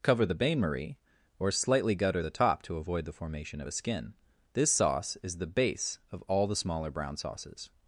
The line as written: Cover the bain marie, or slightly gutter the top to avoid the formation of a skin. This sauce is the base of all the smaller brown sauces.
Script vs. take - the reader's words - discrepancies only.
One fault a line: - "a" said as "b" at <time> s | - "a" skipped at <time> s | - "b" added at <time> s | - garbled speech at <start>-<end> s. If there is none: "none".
none